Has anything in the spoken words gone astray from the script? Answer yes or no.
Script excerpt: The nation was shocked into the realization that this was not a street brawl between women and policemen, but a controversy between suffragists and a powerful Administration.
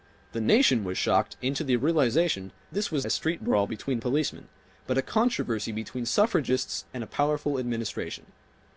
yes